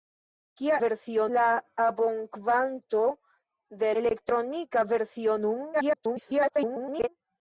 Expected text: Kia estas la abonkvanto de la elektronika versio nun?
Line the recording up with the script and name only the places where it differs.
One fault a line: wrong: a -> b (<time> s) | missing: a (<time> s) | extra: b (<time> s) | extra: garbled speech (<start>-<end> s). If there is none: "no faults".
wrong: estas -> versio (0.8 s)
missing: la (3.9 s)
extra: garbled speech (5.7-7.1 s)